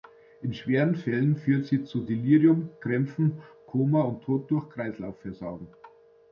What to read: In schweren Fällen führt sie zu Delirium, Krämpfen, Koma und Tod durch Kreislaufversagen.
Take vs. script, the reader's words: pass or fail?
pass